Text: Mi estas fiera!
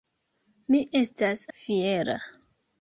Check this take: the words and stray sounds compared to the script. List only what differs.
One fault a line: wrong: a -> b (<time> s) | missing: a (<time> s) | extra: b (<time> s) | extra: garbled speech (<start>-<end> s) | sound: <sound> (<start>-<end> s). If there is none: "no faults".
no faults